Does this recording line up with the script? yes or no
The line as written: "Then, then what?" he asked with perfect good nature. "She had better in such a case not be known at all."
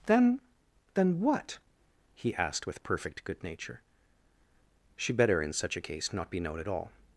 no